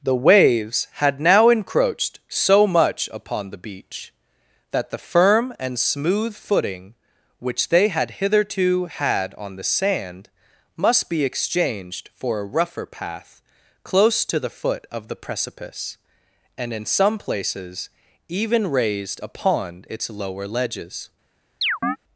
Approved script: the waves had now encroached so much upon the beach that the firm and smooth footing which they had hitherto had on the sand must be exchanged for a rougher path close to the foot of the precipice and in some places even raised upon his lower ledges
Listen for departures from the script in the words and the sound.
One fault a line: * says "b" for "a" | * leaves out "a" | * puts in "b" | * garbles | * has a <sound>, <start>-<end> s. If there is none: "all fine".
* says "its" for "his"
* has a chirp, 21.6-22.0 s